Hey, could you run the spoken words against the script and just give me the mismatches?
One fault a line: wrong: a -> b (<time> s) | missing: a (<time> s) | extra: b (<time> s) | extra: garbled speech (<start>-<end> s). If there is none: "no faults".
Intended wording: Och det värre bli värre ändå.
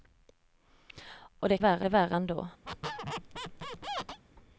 no faults